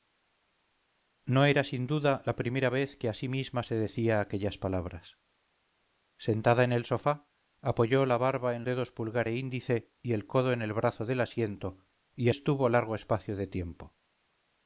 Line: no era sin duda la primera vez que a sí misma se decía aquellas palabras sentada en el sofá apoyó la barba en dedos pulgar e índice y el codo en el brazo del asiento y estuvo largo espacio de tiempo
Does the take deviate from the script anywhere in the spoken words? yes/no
no